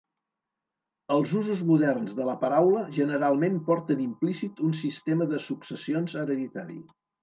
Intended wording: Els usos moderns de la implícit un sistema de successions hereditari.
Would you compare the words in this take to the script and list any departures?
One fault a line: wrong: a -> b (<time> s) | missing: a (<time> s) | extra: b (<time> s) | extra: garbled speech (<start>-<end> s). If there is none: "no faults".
extra: paraula generalment porten (2.5 s)